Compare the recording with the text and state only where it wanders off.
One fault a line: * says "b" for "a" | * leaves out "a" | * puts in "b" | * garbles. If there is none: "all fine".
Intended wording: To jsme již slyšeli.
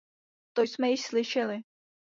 all fine